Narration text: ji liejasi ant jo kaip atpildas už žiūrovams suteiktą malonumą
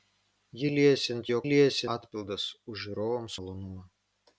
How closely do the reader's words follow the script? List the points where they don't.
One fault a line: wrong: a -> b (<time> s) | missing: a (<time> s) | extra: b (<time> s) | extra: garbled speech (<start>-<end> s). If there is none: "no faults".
wrong: kaip -> liejasi (1.5 s)
missing: suteiktą (3.4 s)